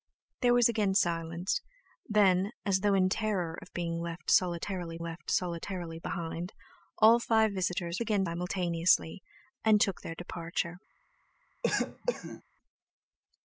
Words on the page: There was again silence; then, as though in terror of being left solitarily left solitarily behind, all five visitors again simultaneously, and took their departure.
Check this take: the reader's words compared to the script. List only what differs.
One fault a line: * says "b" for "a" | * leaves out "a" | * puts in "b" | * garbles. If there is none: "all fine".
all fine